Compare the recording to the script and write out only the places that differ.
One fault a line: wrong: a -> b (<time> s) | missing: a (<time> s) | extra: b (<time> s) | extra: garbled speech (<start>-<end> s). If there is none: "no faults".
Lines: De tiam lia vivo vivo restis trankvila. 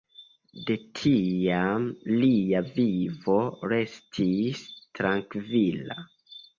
missing: vivo (3.4 s)